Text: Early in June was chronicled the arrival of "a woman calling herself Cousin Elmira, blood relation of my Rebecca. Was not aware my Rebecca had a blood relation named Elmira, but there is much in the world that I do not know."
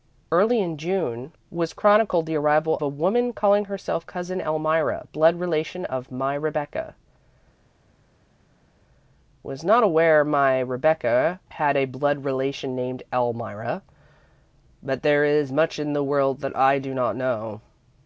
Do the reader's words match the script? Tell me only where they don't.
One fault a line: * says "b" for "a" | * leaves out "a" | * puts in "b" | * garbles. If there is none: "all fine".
* leaves out "of"